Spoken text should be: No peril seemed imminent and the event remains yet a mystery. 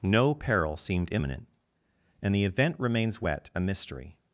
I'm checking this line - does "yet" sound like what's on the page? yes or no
no